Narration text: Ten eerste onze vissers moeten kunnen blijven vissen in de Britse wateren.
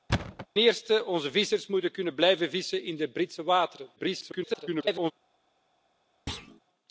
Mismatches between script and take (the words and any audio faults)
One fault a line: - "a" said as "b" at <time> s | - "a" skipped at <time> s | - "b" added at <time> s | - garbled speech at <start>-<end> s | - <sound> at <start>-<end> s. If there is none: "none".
- thud at 0.1-0.5 s
- garbled speech at 4.0-5.1 s
- thud at 6.3-6.6 s